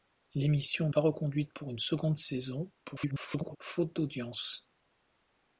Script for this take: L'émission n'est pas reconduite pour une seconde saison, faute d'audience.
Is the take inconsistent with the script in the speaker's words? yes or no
yes